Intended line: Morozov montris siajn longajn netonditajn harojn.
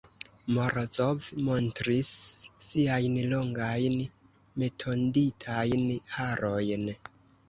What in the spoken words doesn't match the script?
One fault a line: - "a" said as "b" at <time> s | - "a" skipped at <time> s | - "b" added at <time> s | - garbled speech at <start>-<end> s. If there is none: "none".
none